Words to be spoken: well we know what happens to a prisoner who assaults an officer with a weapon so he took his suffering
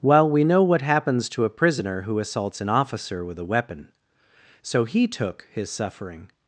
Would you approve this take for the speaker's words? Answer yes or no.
yes